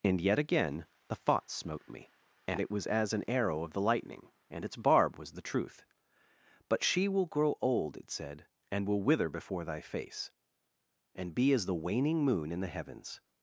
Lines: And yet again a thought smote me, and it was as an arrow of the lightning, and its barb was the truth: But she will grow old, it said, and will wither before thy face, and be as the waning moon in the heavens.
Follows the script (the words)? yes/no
no